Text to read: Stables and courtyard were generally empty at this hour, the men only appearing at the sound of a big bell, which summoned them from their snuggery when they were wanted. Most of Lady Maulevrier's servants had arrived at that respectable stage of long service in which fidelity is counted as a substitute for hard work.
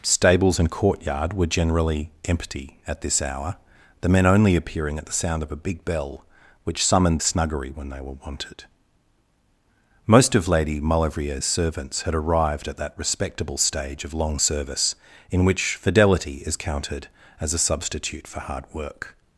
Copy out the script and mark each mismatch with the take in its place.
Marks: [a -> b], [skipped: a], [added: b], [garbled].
Stables and courtyard were generally empty at this hour, the men only appearing at the sound of a big bell, which summoned [skipped: them from their] snuggery when they were wanted. Most of Lady Maulevrier's servants had arrived at that respectable stage of long service in which fidelity is counted as a substitute for hard work.